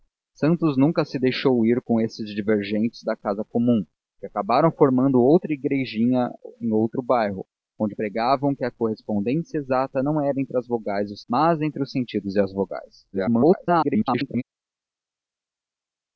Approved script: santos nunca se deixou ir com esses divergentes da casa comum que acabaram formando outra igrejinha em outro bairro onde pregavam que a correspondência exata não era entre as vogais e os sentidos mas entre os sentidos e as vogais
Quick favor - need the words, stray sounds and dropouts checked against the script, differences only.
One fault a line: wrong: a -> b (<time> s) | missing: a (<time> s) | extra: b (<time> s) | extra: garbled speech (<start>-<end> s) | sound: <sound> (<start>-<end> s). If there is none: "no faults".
missing: sentidos (11.2 s)
extra: garbled speech (13.1-14.4 s)